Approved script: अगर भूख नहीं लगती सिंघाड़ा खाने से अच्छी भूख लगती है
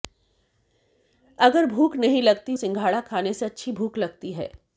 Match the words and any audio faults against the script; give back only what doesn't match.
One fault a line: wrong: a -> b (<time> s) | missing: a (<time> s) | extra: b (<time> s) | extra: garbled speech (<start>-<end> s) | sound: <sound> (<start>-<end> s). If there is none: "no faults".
no faults